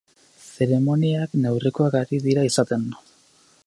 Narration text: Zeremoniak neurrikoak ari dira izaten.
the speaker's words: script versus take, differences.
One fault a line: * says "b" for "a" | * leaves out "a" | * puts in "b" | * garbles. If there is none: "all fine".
all fine